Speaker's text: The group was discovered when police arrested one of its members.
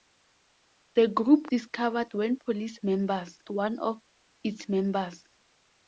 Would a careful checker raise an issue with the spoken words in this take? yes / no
yes